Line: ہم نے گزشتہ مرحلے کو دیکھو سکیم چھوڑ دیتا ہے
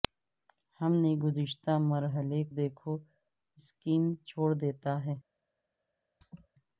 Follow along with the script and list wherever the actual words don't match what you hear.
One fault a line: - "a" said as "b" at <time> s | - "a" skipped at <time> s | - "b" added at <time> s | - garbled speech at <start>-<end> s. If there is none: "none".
- "کو" skipped at 2.4 s